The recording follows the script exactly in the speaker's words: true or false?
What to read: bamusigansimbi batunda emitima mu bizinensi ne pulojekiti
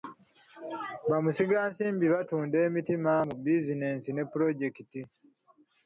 true